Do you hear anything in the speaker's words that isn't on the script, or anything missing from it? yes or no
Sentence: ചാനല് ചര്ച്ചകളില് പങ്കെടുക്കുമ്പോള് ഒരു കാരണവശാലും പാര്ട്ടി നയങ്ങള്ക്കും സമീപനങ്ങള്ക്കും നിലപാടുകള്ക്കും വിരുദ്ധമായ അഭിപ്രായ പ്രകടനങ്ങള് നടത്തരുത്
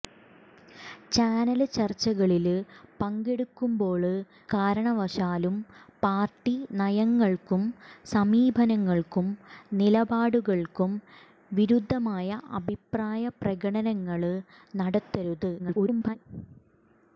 yes